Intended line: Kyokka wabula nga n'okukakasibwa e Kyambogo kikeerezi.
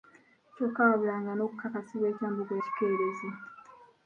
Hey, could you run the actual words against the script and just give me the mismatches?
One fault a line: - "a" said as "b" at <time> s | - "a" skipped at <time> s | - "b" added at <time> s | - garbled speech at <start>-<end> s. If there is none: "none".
none